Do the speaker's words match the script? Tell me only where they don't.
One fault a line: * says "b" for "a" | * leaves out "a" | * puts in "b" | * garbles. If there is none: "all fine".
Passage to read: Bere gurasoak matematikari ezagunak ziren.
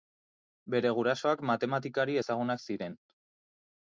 all fine